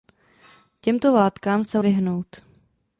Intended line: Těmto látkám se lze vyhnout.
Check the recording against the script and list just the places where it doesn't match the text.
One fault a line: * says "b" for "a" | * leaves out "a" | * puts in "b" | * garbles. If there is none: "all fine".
* leaves out "lze"